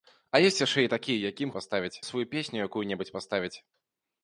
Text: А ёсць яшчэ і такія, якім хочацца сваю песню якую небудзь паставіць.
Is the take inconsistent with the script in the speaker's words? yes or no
yes